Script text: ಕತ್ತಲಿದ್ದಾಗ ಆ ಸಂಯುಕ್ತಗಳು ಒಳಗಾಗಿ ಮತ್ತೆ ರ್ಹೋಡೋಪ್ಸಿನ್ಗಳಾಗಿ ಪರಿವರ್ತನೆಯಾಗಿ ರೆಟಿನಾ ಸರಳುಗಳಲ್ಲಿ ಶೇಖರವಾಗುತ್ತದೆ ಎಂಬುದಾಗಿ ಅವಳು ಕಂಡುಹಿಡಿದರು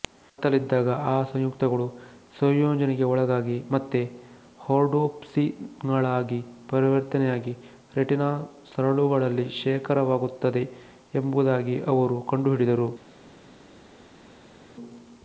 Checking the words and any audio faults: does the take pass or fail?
fail